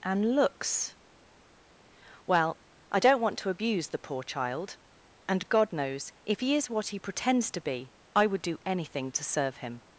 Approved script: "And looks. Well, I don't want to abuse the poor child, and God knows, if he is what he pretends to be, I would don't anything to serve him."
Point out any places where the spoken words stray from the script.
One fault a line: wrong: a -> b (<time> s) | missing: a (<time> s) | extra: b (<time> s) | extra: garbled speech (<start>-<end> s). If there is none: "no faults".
wrong: don't -> do (8.4 s)